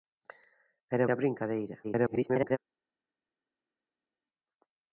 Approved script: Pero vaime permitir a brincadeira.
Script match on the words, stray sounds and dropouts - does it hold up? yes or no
no